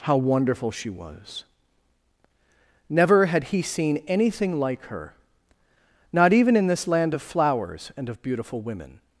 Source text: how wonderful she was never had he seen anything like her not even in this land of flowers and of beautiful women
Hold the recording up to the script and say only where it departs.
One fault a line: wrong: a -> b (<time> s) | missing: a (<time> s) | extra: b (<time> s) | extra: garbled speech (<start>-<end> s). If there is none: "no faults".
no faults